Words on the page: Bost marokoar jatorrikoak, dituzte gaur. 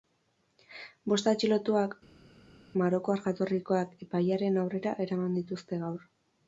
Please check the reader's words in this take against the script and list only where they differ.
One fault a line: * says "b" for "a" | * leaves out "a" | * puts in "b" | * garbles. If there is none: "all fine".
* puts in "atxilotuak"
* puts in "epailearen aurrera eraman"